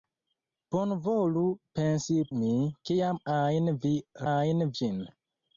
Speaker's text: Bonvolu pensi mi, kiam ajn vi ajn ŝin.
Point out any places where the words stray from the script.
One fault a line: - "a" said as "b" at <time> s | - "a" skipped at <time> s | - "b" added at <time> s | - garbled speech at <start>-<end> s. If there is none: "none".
none